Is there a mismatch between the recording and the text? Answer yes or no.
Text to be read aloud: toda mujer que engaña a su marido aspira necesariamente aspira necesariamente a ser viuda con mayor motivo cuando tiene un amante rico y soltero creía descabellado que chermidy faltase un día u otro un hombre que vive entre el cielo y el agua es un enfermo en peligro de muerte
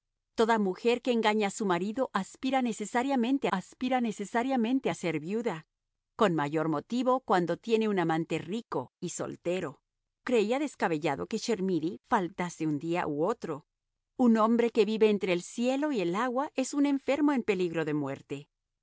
no